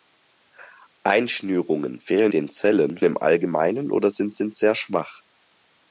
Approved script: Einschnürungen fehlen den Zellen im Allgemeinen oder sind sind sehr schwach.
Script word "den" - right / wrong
right